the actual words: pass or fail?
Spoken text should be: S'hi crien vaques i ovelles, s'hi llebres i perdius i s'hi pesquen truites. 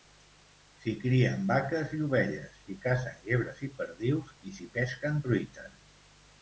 fail